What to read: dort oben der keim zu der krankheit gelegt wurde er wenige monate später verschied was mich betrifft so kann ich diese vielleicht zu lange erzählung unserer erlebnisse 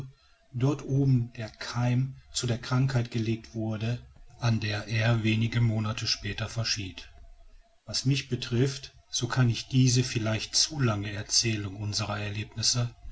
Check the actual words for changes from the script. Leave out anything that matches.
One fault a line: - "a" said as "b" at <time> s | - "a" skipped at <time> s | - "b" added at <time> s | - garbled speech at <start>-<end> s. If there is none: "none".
- "an der" added at 4.4 s